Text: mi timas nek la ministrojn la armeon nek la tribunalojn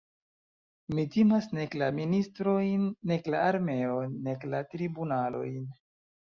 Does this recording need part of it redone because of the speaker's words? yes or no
yes